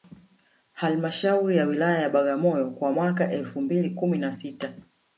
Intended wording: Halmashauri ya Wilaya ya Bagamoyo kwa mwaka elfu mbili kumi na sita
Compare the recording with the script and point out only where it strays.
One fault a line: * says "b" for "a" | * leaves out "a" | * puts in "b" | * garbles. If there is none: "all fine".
all fine